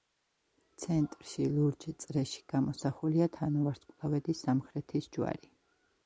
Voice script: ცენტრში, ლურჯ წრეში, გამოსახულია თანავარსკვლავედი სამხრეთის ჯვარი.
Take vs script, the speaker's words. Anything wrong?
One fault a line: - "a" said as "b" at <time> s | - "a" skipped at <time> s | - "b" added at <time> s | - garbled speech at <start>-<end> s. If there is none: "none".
none